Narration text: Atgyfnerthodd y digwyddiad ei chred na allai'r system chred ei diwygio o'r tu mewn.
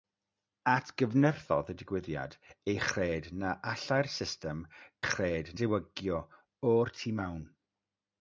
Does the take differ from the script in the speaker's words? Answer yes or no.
no